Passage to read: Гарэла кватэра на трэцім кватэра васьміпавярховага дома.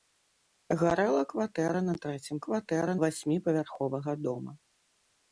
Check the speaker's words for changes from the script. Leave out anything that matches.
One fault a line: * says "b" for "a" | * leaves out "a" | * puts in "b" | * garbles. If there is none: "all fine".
all fine